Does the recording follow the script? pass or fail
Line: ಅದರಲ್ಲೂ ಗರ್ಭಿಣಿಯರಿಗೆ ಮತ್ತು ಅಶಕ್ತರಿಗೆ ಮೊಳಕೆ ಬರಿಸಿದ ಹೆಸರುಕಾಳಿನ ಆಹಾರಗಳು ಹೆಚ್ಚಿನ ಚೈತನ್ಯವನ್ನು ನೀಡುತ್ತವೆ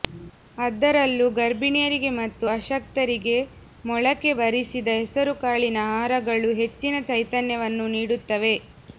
pass